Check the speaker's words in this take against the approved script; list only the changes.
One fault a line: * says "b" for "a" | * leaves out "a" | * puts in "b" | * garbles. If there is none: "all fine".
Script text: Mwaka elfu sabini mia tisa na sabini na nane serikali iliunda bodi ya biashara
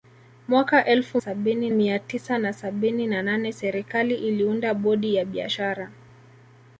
all fine